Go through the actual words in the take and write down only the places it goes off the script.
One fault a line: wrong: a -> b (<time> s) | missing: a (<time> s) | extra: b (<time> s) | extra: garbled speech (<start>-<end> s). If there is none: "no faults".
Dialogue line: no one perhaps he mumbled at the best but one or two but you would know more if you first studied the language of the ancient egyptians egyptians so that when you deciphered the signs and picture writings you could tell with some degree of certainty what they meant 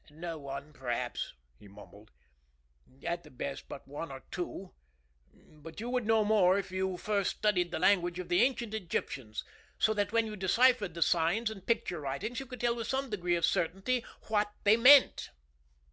missing: egyptians (9.4 s)